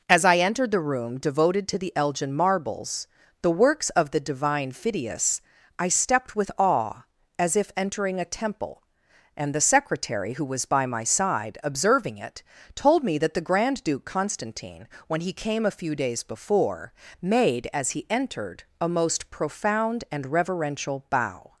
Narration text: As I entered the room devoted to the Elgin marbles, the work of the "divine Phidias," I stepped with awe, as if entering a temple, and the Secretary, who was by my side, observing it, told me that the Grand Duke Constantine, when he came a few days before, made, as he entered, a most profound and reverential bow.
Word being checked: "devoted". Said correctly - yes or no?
yes